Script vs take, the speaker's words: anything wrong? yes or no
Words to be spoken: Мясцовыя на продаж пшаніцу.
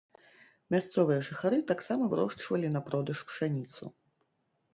yes